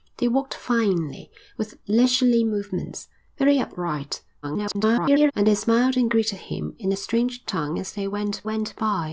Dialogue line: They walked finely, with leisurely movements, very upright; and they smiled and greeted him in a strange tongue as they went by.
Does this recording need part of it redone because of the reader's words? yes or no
yes